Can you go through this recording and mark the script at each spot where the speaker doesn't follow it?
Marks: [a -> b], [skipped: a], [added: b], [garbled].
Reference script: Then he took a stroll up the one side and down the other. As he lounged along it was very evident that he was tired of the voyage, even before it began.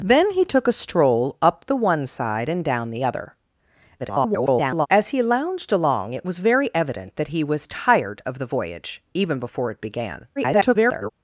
Then he took a stroll up the one side and down the other. [garbled] As he lounged along it was very evident that he was tired of the voyage, even before it began. [garbled]